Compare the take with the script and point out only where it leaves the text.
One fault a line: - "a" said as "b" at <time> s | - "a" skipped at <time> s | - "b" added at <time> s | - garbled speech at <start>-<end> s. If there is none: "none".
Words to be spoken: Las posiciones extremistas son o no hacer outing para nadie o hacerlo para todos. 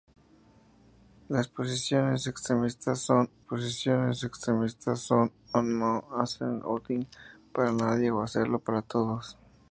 - "posiciones extremistas son" added at 3.4 s